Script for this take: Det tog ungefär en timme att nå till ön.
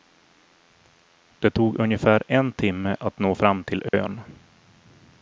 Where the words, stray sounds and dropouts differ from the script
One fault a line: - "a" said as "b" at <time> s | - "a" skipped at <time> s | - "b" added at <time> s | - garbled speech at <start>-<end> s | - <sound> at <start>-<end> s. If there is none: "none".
- "fram" added at 3.3 s
- dropout at 3.9-3.9 s